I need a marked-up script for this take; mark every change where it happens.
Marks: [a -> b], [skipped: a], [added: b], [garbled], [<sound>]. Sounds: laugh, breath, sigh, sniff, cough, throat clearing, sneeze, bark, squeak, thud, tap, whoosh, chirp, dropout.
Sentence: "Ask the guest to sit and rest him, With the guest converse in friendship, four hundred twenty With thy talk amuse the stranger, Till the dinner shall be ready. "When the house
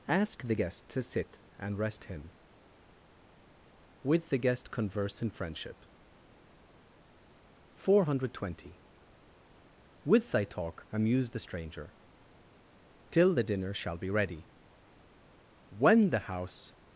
"Ask the guest to sit and rest him, With the guest converse in friendship, four hundred twenty With thy talk amuse the stranger, Till the dinner shall be ready. "When the house